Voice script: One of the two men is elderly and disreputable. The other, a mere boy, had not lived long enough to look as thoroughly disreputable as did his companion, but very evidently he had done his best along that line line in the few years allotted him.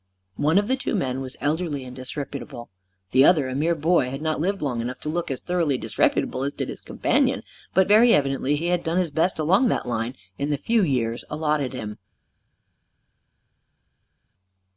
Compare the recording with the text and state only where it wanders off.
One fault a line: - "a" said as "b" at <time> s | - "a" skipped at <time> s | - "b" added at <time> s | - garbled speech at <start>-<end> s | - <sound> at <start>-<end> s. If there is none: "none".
- "is" said as "was" at 1.2 s
- "line" skipped at 10.1 s